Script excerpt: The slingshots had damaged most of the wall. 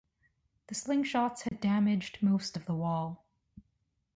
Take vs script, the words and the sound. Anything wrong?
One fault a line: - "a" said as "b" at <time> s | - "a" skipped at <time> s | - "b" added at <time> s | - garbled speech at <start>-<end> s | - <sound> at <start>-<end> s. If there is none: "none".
- dropout at 1.5-1.5 s